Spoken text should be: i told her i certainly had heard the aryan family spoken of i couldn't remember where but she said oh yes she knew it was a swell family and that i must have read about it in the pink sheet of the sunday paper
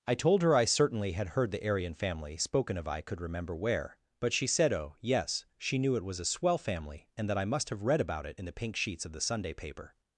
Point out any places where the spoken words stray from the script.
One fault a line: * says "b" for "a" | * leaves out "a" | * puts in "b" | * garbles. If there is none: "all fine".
* says "could" for "couldn't"
* says "sheets" for "sheet"